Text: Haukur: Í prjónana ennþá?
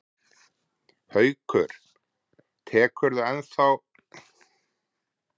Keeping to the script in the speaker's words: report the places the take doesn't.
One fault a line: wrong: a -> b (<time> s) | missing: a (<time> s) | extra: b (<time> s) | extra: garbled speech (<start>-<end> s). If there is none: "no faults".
extra: Tekurðu (2.7 s)